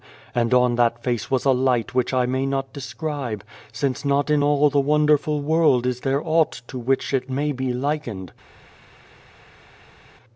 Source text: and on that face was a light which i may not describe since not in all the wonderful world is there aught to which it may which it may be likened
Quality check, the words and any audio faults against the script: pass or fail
fail